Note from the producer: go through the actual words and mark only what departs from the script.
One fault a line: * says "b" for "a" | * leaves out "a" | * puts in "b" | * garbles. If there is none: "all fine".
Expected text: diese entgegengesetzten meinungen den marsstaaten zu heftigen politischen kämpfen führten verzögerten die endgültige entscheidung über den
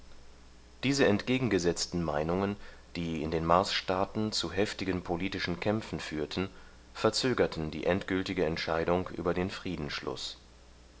* puts in "die in"